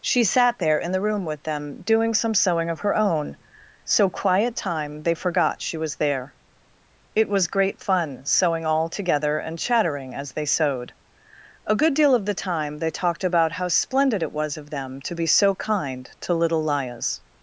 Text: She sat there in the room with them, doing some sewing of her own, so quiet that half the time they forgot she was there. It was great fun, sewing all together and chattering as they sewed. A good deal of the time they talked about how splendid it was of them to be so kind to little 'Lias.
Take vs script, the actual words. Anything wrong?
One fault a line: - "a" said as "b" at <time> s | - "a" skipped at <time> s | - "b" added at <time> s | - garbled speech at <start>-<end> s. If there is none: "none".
- "that half the" skipped at 4.5 s